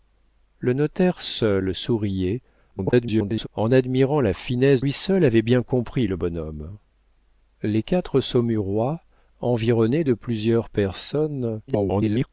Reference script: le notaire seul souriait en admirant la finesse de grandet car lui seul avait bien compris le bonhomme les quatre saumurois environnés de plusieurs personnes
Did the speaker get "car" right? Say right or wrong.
wrong